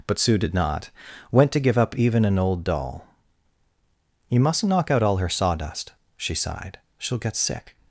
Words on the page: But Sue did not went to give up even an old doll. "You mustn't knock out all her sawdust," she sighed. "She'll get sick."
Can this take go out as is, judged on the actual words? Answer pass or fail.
pass